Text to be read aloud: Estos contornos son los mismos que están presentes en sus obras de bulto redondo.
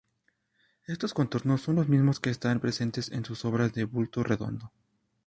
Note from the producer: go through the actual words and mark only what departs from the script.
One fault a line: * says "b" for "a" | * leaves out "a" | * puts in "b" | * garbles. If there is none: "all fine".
all fine